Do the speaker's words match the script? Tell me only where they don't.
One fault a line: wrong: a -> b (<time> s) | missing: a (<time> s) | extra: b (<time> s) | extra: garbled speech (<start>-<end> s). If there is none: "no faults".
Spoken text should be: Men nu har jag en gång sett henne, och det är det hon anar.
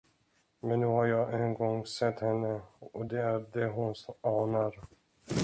no faults